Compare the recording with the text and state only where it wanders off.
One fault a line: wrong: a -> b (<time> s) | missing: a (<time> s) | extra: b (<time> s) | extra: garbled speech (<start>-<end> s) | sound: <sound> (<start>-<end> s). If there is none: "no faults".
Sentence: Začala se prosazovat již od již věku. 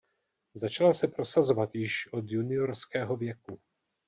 wrong: již -> juniorského (2.3 s)